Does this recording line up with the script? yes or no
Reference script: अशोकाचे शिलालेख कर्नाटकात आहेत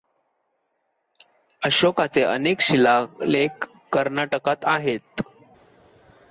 no